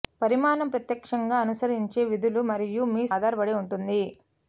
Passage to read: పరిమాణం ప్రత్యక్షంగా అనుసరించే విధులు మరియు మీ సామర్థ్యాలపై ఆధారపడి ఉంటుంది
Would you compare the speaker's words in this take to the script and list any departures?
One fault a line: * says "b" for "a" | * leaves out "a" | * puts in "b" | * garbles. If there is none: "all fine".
* leaves out "సామర్థ్యాలపై"